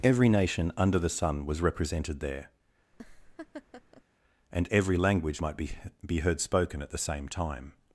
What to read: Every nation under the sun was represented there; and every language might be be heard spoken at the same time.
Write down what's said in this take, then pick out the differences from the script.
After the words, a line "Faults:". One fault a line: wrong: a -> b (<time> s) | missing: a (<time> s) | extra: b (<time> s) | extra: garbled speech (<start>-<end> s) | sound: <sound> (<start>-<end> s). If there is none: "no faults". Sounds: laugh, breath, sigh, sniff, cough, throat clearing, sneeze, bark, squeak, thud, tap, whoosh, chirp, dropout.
Every nation under the sun was represented there; and every language might be be heard spoken at the same time.
Faults:
sound: laugh (2.9-4.0 s)